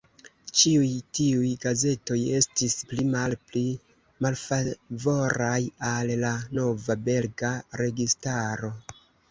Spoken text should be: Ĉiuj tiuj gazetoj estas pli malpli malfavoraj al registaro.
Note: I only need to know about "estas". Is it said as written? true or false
false